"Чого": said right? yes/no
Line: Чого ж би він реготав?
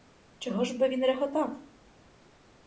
yes